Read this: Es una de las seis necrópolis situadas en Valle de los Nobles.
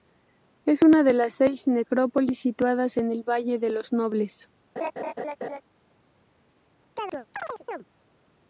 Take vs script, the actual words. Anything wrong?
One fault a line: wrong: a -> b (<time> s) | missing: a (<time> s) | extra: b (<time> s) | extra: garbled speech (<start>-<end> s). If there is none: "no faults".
extra: el (3.1 s)